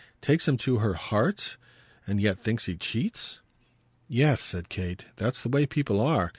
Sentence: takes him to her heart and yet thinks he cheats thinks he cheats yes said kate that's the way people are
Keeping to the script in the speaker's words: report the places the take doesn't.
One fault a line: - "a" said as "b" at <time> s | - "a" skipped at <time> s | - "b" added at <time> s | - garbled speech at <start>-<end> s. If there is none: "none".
- "thinks he cheats" skipped at 3.4 s